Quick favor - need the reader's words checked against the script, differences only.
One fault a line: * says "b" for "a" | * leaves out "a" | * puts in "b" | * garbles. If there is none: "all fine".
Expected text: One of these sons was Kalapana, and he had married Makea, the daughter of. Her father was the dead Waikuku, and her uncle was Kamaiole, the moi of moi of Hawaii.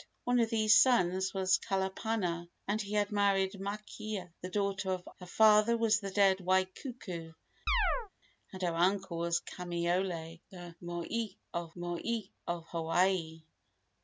all fine